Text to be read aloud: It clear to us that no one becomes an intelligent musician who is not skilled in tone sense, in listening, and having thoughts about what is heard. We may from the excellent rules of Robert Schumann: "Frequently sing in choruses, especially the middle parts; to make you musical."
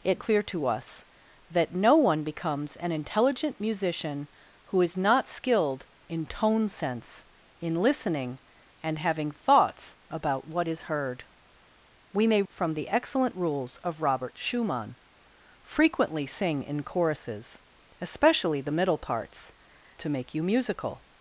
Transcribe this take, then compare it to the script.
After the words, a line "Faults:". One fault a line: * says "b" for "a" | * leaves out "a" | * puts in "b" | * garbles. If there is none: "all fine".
It clear to us that no one becomes an intelligent musician who is not skilled in tone sense, in listening, and having thoughts about what is heard. We may from the excellent rules of Robert Schumann: "Frequently sing in choruses, especially the middle parts; to make you musical."
Faults:
all fine